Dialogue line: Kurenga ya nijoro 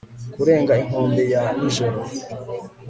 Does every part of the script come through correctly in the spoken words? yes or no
no